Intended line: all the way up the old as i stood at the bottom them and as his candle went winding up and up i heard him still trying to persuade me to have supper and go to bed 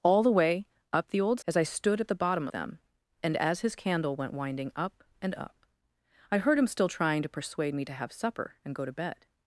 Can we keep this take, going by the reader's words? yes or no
yes